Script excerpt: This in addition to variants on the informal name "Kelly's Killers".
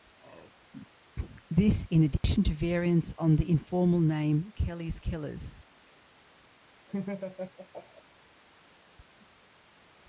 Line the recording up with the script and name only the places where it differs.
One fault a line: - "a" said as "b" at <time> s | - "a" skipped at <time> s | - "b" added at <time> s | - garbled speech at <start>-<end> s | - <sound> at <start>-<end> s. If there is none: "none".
- dropout at 2.2-2.2 s
- laugh at 6.9-8.0 s